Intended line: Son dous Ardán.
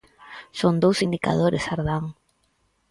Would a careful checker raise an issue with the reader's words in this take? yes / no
yes